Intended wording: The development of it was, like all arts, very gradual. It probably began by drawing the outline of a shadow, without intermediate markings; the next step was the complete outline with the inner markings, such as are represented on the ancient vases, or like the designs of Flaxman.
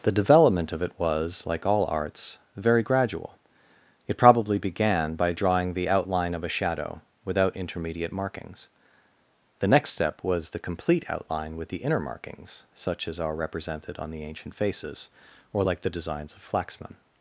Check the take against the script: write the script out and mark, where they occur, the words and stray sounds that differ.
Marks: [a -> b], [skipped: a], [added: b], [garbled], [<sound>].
The development of it was, like all arts, very gradual. It probably began by drawing the outline of a shadow, without intermediate markings; the next step was the complete outline with the inner markings, such as are represented on the ancient [vases, -> faces] or like the designs of Flaxman.